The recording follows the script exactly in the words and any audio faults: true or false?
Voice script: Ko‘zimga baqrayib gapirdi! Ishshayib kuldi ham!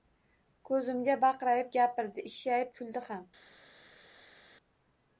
true